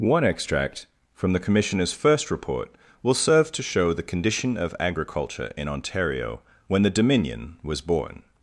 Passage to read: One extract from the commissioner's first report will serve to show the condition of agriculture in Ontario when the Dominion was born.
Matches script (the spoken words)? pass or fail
pass